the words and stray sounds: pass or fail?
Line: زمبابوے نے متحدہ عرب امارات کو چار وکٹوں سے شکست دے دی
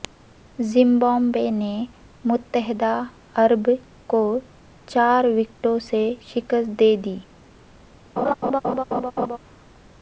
fail